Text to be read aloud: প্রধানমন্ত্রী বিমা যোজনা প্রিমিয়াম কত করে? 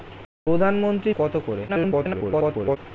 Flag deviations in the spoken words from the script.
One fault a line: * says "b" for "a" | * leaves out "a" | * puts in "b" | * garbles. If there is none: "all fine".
* leaves out "বিমা যোজনা প্রিমিয়াম"
* garbles